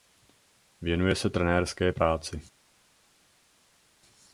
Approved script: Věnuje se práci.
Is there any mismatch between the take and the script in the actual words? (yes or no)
yes